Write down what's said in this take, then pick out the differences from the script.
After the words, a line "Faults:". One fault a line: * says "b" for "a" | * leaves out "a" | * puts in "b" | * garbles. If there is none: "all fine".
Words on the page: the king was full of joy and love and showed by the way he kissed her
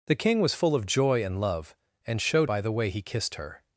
the king was full of joy and love and showed by the way he kissed her
Faults:
all fine